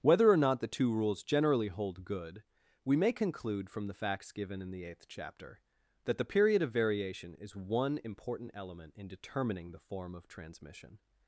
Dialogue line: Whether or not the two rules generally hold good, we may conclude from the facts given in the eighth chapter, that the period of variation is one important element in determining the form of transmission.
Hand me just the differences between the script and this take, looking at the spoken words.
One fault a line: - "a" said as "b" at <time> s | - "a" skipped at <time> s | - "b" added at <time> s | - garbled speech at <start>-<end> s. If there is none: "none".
none